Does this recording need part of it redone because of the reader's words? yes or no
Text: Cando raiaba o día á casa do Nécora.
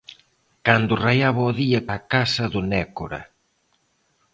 no